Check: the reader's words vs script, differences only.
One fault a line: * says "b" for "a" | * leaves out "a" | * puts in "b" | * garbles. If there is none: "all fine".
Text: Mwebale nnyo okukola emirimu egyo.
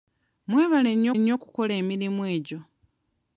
* puts in "nnyo"